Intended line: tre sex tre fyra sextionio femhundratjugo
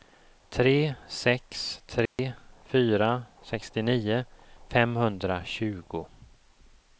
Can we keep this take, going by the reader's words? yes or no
yes